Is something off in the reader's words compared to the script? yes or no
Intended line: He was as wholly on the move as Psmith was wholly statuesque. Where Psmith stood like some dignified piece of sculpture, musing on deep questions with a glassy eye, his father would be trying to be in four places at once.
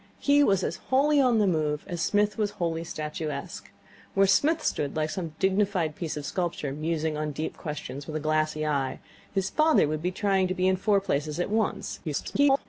yes